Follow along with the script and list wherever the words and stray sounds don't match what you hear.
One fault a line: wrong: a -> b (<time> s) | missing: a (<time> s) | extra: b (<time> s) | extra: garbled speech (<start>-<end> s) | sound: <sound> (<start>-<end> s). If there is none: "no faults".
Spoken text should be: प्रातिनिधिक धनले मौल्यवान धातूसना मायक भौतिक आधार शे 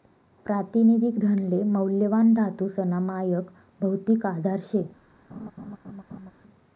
sound: laugh (5.3-6.3 s)